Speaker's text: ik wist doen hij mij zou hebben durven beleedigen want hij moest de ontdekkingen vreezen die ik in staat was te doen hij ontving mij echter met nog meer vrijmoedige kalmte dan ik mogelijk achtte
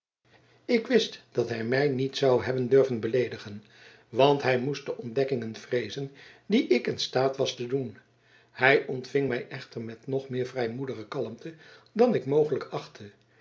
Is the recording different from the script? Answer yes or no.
yes